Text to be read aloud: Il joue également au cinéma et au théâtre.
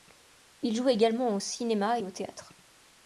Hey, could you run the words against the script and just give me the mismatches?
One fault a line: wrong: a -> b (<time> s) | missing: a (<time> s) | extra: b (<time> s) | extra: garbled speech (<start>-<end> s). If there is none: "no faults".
no faults